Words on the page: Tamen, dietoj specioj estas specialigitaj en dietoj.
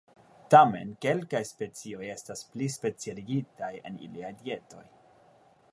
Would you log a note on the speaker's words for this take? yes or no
yes